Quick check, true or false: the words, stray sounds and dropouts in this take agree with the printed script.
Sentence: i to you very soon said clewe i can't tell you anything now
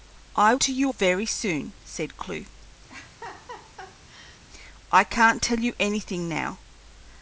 false